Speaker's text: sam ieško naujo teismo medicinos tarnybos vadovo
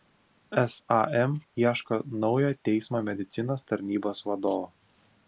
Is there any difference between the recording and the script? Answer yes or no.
no